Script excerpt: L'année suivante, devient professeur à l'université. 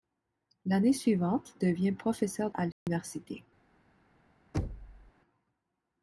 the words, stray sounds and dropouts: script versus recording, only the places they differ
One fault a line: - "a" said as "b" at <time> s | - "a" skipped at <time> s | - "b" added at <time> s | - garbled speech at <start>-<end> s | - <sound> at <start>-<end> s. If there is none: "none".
- dropout at 2.7-2.9 s
- thud at 4.5-5.1 s